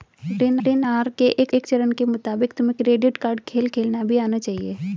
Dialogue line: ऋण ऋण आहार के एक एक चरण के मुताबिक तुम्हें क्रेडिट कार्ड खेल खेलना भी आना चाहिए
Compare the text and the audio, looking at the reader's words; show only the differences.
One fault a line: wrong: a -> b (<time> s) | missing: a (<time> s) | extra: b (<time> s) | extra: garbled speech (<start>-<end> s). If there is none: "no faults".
no faults